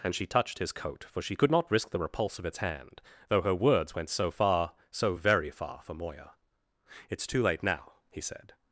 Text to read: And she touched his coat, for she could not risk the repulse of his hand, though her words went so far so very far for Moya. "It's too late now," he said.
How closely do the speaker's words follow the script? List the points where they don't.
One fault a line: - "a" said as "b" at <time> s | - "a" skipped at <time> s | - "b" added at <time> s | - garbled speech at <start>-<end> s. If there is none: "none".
- "his" said as "its" at 2.5 s